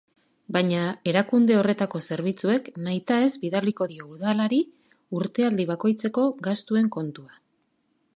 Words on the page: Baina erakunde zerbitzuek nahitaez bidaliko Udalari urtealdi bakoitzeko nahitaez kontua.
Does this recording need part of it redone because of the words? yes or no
yes